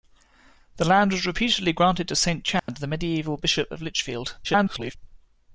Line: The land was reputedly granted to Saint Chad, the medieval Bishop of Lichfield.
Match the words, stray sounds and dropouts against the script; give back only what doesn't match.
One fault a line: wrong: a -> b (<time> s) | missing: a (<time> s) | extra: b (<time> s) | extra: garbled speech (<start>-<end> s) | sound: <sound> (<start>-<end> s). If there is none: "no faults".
sound: dropout (2.6-2.7 s)
extra: garbled speech (4.4-5.0 s)